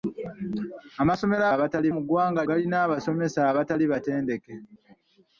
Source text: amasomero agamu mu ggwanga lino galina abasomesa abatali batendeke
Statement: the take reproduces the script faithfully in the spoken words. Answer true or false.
false